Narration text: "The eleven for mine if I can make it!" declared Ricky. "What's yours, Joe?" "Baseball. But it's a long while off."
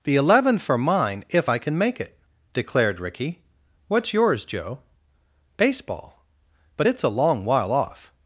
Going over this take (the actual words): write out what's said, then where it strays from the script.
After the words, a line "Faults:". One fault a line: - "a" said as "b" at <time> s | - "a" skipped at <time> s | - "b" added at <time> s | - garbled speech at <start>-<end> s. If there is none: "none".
"The eleven for mine if I can make it!" declared Ricky. "What's yours, Joe?" "Baseball. But it's a long while off."
Faults:
none